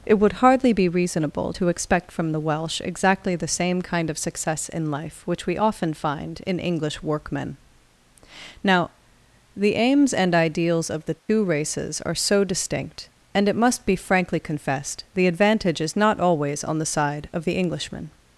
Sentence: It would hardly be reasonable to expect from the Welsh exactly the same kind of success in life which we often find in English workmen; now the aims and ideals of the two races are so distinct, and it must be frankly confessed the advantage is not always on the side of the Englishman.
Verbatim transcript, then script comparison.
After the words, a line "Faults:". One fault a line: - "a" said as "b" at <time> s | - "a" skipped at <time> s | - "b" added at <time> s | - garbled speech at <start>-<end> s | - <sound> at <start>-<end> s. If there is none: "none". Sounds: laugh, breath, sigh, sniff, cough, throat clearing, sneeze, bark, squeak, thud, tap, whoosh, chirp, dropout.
It would hardly be reasonable to expect from the Welsh exactly the same kind of success in life which we often find in English workmen; now the aims and ideals of the two races are so distinct, and it must be frankly confessed the advantage is not always on the side of the Englishman.
Faults:
- dropout at 11.2-11.3 s